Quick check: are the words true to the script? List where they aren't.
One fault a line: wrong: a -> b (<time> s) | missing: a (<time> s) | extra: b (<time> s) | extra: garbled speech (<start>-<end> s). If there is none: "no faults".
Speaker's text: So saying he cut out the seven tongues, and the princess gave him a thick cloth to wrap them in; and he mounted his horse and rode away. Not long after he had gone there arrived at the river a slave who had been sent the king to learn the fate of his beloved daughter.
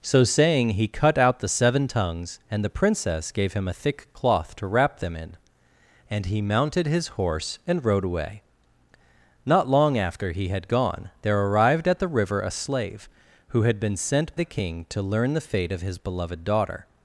no faults